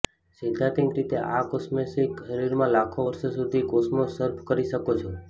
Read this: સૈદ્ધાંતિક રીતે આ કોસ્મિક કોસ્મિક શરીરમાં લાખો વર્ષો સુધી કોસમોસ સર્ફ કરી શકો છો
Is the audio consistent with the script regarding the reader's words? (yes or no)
no